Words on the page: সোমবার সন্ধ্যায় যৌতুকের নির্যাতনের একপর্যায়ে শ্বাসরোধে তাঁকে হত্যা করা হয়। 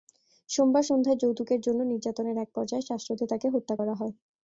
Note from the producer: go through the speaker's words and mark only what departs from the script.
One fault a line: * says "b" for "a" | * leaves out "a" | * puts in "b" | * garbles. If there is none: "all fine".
* puts in "জন্য"